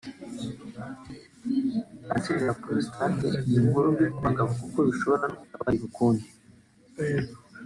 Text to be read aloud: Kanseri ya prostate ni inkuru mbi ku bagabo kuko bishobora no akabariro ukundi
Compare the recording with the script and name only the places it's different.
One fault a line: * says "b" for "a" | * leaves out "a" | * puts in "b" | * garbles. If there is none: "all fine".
all fine